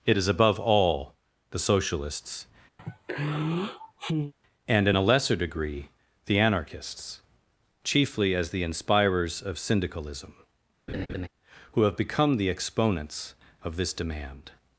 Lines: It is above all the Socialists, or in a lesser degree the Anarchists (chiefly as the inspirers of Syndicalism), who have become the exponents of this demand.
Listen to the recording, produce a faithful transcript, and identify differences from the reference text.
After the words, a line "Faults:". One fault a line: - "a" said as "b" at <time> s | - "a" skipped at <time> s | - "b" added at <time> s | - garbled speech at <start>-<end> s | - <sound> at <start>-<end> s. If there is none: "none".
It is above all the Socialists, and in a lesser degree the Anarchists (chiefly as the inspirers of Syndicalism), who have become the exponents of this demand.
Faults:
- sigh at 2.8-4.3 s
- "or" said as "and" at 4.7 s
- laugh at 10.9-11.3 s